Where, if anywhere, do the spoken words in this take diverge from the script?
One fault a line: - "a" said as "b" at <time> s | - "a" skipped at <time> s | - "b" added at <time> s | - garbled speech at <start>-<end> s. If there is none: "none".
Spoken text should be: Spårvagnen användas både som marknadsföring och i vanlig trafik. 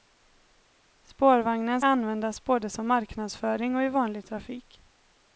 none